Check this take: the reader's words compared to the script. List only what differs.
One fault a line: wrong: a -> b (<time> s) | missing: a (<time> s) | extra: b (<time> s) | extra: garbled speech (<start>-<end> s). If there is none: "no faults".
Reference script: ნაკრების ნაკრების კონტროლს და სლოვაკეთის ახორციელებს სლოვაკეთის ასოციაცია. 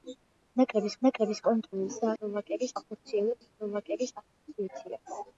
no faults